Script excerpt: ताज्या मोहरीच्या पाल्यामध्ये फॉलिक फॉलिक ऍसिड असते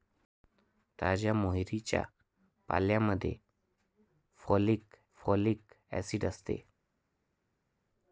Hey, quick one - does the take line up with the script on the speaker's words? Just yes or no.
yes